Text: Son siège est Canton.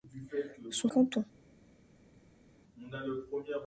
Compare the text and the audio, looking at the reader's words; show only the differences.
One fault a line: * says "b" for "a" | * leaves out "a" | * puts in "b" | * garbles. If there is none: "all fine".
* leaves out "siège est"